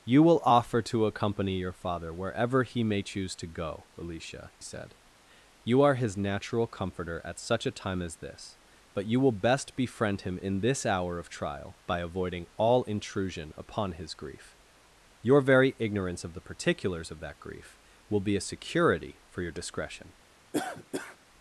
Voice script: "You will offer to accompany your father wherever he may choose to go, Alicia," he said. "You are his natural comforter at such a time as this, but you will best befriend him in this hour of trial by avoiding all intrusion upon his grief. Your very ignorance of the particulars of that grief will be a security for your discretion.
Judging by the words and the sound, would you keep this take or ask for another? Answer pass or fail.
fail